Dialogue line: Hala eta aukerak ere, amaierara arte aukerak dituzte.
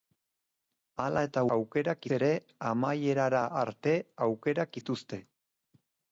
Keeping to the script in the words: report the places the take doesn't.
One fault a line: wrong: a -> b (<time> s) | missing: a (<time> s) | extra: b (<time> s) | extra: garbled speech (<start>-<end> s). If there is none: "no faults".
no faults